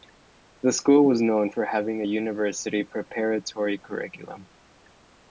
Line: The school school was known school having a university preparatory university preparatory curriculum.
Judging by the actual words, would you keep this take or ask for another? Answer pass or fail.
fail